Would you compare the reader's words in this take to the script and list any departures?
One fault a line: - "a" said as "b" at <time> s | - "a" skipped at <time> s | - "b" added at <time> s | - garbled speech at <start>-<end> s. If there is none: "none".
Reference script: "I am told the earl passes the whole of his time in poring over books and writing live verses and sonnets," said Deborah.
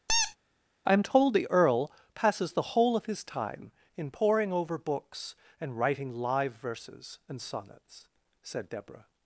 none